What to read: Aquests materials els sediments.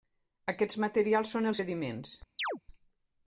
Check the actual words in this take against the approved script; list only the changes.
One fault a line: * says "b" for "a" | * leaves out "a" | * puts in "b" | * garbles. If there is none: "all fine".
* puts in "són"